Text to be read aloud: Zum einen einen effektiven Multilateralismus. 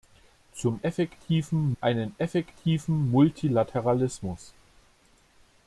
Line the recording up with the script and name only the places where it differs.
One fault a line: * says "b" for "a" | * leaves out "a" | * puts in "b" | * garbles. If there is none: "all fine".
* says "effektiven" for "einen"